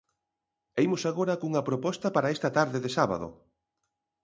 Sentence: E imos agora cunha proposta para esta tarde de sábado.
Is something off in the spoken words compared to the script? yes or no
no